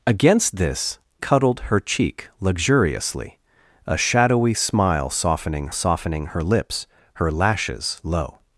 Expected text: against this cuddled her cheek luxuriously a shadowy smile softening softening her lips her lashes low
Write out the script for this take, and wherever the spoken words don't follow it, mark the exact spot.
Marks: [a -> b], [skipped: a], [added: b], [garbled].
against this cuddled her cheek luxuriously a shadowy smile softening softening her lips her lashes low